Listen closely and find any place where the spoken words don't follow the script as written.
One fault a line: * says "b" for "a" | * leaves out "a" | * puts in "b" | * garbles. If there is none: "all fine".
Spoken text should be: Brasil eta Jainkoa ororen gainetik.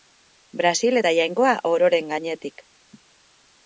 all fine